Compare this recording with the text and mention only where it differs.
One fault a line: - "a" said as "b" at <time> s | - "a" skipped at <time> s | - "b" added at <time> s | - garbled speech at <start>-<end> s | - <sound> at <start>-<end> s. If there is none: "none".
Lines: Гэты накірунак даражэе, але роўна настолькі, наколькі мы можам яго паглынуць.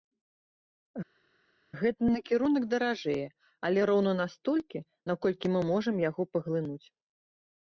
none